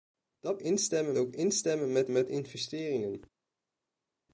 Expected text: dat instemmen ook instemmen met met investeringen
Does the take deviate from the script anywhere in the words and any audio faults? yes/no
no